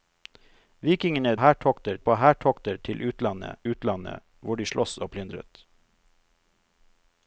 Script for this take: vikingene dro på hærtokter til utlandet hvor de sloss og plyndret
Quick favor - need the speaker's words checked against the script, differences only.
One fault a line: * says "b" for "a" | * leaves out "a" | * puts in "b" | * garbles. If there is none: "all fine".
* says "hærtokter" for "dro"
* puts in "utlandet"